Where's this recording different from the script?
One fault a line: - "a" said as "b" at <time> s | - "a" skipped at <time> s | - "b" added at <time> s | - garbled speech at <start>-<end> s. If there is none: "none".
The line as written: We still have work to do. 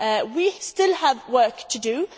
none